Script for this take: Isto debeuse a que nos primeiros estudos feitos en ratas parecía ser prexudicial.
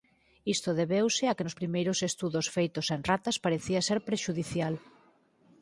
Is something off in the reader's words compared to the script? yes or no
no